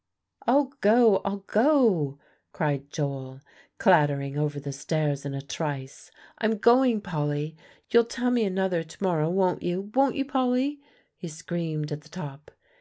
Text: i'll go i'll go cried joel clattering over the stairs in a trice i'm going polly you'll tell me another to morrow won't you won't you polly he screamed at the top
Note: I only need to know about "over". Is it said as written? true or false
true